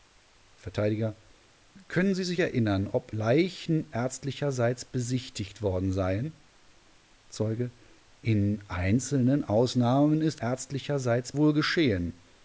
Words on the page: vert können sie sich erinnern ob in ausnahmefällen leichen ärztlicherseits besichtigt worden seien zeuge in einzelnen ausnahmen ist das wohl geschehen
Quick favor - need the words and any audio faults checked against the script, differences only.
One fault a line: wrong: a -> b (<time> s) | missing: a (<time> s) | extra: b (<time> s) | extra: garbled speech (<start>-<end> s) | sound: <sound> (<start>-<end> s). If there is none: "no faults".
missing: in ausnahmefällen (3.1 s)
wrong: das -> ärztlicherseits (10.4 s)